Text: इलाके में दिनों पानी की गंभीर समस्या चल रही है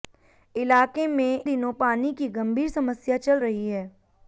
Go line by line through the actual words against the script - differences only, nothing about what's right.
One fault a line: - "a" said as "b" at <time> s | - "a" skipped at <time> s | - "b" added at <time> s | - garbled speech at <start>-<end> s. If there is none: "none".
none